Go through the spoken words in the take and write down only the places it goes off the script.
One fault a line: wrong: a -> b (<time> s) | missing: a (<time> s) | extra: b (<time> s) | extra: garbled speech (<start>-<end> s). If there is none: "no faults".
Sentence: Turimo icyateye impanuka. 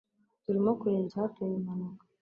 extra: kureba (0.8 s)